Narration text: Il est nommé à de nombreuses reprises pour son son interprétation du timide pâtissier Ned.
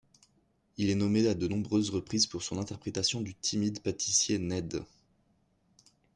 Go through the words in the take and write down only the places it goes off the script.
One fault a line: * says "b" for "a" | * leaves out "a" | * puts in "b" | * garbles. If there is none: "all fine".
* leaves out "son"